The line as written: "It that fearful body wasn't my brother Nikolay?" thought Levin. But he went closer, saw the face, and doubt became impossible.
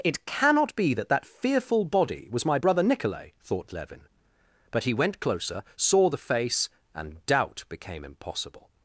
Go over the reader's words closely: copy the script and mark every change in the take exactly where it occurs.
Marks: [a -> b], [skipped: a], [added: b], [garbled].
"It [added: cannot be] that [added: that] fearful body [wasn't -> was] my brother Nikolay?" thought Levin. But he went closer, saw the face, and doubt became impossible.